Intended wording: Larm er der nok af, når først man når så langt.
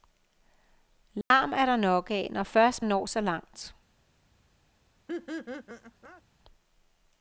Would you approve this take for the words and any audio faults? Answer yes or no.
no